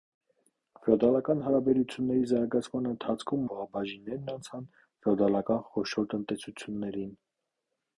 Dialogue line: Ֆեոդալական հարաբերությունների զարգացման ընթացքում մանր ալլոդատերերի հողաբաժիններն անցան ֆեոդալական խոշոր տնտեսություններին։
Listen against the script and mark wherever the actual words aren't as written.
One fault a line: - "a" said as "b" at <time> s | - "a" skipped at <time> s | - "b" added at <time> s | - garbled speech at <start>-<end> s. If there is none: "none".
- "մանր ալլոդատերերի" skipped at 3.5 s